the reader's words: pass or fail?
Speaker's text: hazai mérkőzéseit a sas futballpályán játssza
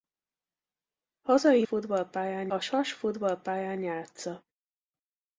fail